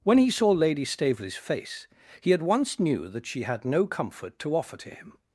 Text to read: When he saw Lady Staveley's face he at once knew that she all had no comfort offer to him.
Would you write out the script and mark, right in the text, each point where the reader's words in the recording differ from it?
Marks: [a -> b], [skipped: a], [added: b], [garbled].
When he saw Lady Staveley's face he at once knew that she [skipped: all] had no comfort [added: to] offer to him.